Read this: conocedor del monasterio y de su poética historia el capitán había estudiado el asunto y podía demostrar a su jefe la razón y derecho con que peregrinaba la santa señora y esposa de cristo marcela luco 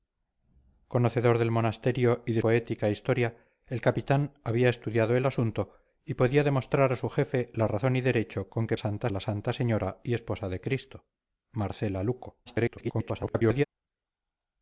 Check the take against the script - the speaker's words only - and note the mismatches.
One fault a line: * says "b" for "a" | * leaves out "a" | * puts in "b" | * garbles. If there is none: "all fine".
* leaves out "su"
* says "santa" for "peregrinaba"
* garbles